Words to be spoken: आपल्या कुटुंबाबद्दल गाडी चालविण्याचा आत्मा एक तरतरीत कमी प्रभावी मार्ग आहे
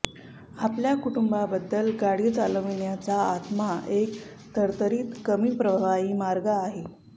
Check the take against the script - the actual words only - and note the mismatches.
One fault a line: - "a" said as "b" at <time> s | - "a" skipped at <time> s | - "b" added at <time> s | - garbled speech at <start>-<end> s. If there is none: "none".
none